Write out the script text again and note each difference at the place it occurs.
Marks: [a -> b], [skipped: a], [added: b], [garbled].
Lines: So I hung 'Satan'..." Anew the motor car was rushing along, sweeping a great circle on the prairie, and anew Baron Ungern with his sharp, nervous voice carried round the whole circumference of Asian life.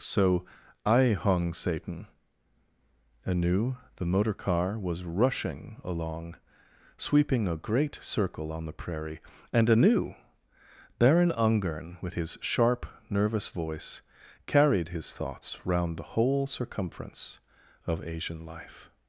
So I hung 'Satan'..." Anew the motor car was rushing along, sweeping a great circle on the prairie, and anew Baron Ungern with his sharp, nervous voice carried [added: his thoughts] round the whole circumference of Asian life.